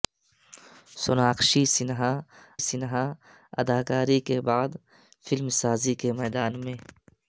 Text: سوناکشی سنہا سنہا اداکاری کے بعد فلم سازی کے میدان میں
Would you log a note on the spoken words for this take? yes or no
no